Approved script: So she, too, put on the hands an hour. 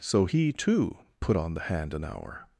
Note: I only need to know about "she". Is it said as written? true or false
false